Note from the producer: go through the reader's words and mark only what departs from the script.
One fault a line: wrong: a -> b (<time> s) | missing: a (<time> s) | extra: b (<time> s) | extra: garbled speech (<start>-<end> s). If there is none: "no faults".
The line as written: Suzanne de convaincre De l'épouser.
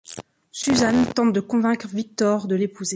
extra: tente (1.1 s)
extra: Victor (1.9 s)